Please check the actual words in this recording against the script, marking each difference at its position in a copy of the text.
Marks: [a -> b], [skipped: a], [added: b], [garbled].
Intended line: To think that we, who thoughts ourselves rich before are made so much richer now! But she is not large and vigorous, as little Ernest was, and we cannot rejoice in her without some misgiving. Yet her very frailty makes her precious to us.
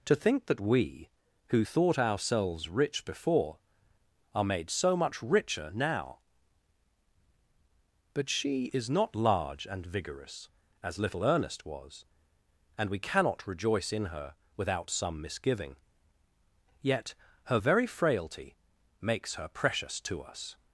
To think that we, who [thoughts -> thought] ourselves rich before are made so much richer now! But she is not large and vigorous, as little Ernest was, and we cannot rejoice in her without some misgiving. Yet her very frailty makes her precious to us.